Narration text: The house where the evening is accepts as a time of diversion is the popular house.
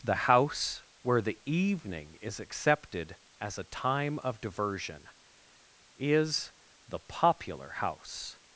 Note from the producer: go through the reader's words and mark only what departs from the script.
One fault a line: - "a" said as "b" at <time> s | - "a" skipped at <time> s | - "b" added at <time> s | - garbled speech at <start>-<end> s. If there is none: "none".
- "accepts" said as "accepted" at 2.4 s